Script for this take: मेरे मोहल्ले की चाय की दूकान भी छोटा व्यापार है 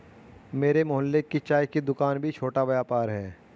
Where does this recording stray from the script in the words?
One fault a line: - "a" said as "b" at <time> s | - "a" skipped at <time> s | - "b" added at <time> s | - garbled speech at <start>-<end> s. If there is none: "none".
none